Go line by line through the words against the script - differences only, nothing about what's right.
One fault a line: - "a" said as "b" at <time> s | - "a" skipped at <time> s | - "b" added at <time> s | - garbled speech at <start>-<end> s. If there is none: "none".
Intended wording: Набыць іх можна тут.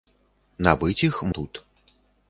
- "можна" skipped at 1.2 s